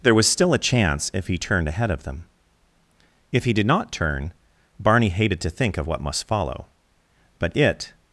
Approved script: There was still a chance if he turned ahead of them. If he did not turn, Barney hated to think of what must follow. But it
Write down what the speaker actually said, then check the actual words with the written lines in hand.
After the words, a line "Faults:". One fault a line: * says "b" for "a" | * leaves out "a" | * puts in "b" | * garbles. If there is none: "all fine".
There was still a chance if he turned ahead of them. If he did not turn, Barney hated to think of what must follow. But it
Faults:
all fine